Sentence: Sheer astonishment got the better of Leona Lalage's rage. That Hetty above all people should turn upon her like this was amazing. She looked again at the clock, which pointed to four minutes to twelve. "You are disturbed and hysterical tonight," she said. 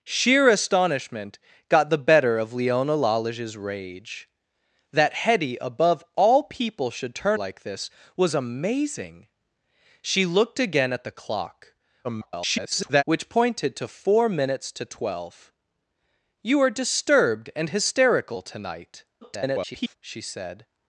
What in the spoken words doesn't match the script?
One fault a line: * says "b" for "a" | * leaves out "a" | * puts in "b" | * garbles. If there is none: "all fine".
* leaves out "upon her"
* garbles
* garbles